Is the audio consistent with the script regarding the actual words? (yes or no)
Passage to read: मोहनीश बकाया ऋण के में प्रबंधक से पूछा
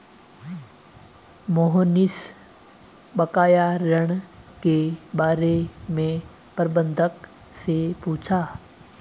no